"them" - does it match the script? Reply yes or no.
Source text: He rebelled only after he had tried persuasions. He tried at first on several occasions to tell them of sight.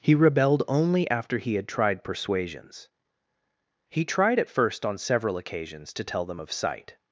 yes